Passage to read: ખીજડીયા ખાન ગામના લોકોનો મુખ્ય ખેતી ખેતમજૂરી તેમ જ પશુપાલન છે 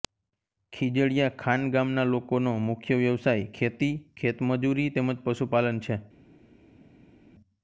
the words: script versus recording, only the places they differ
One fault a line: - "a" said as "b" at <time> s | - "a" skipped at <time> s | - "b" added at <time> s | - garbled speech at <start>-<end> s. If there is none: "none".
- "વ્યવસાય" added at 3.0 s